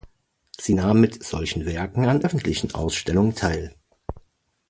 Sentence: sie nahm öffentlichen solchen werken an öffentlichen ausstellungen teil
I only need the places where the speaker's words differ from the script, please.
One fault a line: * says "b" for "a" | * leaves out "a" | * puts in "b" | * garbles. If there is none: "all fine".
* says "mit" for "öffentlichen"